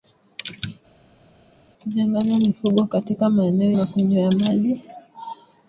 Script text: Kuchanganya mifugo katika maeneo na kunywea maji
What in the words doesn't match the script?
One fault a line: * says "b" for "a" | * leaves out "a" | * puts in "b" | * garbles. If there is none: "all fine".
all fine